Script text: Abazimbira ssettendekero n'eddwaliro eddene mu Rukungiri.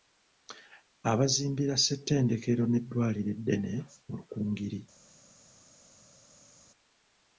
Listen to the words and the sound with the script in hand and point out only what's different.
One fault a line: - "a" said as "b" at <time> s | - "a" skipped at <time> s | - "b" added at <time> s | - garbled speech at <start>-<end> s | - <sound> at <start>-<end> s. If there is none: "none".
none